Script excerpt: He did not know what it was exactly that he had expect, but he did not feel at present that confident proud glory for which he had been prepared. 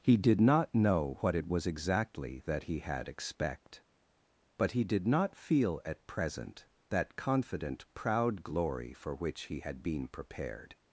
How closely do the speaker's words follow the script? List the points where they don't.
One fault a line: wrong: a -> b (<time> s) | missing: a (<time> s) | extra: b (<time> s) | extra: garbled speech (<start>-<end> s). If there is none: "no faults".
no faults